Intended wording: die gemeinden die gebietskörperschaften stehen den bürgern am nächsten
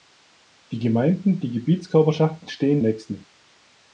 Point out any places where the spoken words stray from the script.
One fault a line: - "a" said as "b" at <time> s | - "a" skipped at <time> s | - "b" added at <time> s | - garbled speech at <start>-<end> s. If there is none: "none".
- "den bürgern am" skipped at 2.8 s